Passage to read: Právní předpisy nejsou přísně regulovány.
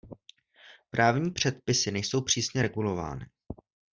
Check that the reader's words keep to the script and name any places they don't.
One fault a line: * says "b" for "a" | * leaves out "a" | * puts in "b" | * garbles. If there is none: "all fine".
all fine